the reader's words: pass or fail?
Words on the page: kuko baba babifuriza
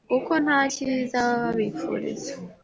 fail